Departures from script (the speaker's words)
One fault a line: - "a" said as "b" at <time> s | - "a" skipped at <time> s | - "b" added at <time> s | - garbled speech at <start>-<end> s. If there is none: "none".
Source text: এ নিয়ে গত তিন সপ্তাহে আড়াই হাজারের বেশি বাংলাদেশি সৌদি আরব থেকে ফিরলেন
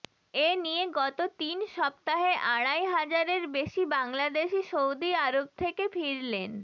none